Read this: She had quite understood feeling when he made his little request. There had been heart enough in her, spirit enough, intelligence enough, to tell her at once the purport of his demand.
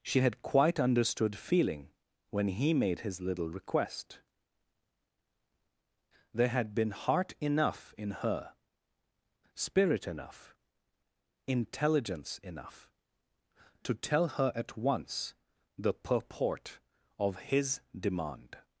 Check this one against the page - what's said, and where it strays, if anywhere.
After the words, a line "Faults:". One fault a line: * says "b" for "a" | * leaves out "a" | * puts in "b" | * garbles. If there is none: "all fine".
She had quite understood feeling when he made his little request. There had been heart enough in her, spirit enough, intelligence enough, to tell her at once the purport of his demand.
Faults:
all fine